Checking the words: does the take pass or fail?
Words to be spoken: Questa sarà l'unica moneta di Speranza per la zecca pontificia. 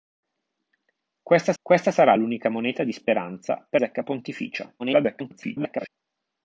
fail